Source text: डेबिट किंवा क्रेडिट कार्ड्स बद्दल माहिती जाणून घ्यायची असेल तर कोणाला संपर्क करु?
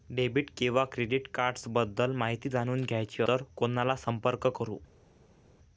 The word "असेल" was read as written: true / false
false